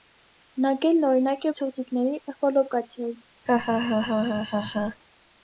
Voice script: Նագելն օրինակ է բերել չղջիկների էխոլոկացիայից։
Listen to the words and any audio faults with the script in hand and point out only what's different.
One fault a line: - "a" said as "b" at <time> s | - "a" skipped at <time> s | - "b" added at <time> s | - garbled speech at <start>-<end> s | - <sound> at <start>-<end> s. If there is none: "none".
- "բերել" skipped at 1.5 s
- laugh at 3.5-5.0 s